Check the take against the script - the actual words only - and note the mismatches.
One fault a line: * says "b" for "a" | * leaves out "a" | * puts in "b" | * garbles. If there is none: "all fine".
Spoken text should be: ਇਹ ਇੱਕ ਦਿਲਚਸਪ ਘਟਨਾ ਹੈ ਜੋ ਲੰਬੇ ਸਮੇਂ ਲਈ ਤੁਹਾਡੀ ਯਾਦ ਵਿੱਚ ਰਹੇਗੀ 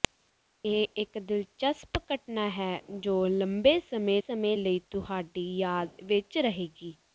* puts in "ਸਮੇਂ"